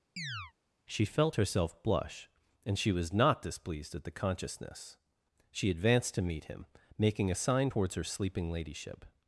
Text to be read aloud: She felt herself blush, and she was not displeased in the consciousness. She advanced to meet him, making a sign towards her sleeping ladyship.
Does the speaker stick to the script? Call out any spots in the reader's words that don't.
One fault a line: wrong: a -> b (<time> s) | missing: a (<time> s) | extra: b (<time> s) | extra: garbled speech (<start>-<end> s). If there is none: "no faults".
wrong: in -> at (3.9 s)